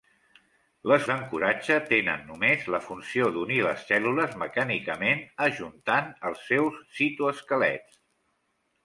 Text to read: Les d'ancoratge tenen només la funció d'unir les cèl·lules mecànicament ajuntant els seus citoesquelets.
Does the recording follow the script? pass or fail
pass